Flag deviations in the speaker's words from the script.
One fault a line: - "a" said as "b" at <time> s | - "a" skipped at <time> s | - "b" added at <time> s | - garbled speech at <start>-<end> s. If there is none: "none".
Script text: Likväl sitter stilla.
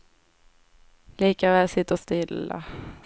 none